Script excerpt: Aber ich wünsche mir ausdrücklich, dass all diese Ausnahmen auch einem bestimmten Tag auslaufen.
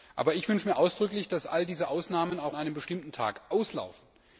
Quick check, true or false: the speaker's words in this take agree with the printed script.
true